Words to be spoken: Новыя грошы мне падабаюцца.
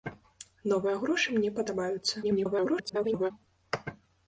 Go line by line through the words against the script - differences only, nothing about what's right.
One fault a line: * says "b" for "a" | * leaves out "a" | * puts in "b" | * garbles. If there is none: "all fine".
* garbles